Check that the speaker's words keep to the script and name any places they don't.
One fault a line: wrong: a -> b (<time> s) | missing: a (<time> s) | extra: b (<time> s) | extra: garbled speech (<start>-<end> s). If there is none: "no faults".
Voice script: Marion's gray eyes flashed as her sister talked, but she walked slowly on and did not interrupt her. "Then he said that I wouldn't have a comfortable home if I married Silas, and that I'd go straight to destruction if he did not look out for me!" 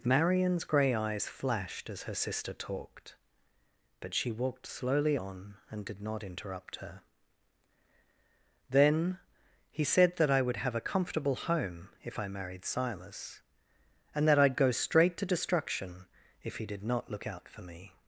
wrong: wouldn't -> would (10.4 s)